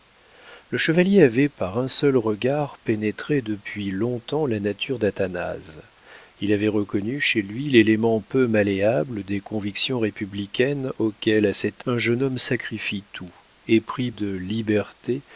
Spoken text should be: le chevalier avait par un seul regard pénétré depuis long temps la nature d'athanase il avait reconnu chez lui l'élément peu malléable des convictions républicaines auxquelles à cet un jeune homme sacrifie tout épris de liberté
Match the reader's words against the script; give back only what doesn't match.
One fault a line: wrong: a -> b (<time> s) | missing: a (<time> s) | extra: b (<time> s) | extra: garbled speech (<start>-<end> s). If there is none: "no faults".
no faults